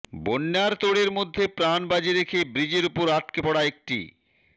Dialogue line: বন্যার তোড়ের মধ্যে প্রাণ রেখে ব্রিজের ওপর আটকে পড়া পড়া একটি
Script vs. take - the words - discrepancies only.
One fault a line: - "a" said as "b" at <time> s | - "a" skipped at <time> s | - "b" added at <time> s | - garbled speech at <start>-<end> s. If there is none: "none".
- "বাজি" added at 1.9 s
- "পড়া" skipped at 3.6 s